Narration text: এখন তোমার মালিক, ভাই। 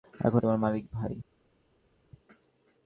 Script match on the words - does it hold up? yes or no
yes